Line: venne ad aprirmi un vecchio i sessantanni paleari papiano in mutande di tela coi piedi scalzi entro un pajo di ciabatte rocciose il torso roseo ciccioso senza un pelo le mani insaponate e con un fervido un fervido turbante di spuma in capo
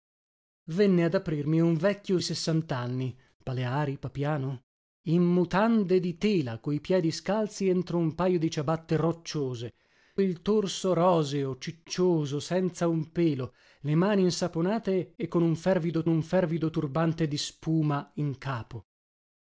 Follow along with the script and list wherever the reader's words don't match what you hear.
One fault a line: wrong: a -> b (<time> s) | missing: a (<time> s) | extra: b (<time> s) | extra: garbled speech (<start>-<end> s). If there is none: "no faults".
no faults